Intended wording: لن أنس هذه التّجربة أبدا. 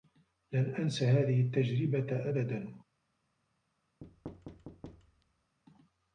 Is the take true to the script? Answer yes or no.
yes